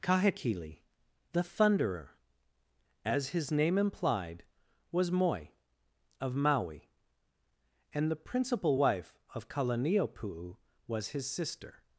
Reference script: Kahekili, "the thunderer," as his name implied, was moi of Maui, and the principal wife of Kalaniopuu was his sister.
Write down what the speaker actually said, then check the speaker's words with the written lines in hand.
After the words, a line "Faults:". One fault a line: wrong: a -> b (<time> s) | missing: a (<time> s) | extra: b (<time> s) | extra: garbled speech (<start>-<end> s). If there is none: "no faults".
Kahekili, "the thunderer," as his name implied, was moi of Maui, and the principal wife of Kalaniopuu was his sister.
Faults:
no faults